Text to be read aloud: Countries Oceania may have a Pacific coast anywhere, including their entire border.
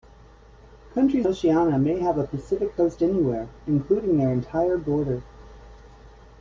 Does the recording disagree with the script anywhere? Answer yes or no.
no